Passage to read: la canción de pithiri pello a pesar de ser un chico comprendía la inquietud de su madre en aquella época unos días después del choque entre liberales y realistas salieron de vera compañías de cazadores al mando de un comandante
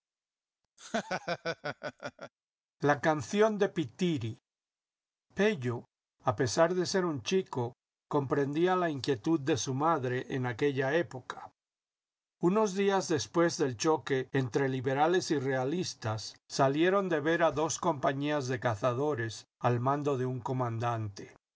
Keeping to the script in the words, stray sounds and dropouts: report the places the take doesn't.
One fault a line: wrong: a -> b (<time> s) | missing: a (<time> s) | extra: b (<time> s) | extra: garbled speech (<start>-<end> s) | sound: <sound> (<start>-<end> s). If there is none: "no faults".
sound: laugh (0.8-2.3 s)
extra: dos (17.5 s)